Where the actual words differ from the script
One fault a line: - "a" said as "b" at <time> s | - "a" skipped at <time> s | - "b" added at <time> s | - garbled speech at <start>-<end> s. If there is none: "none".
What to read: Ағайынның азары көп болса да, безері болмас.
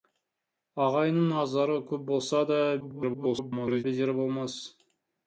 - garbled speech at 2.8-3.8 s